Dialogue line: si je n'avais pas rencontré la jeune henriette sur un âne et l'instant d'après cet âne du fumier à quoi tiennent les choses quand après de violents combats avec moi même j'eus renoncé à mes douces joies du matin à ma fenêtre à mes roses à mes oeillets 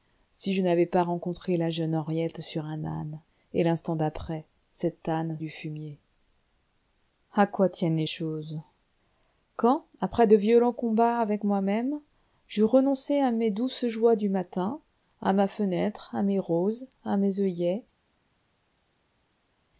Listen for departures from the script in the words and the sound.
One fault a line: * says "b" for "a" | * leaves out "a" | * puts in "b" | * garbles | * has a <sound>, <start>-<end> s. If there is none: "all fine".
all fine